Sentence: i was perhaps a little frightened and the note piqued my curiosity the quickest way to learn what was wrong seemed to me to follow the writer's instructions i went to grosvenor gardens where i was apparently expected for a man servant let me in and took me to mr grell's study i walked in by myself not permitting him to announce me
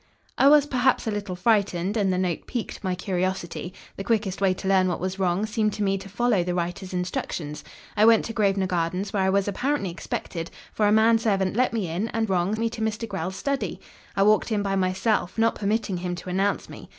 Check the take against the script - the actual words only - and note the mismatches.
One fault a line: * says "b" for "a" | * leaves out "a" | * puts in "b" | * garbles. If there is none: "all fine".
* says "wrong" for "took"